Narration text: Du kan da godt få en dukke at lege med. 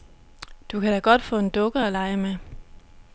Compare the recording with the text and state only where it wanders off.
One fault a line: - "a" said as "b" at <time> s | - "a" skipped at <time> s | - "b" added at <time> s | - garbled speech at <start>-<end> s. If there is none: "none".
none